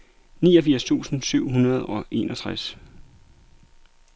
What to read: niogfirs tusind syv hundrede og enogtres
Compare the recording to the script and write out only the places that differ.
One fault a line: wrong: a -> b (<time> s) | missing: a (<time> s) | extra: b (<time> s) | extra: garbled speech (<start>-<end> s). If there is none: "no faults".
no faults